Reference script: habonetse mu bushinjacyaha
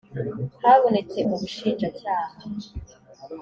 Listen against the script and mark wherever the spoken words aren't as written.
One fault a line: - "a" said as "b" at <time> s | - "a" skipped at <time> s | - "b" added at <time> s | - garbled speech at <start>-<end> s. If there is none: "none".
none